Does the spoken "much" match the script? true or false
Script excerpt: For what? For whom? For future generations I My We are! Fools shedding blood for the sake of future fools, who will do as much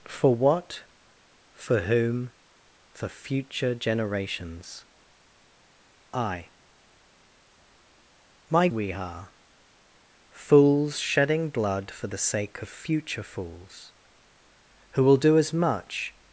true